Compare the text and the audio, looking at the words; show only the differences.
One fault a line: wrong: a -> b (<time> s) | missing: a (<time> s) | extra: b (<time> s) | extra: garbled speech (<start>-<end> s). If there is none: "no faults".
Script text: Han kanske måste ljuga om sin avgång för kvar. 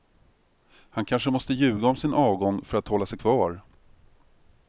extra: att hålla sig (2.8 s)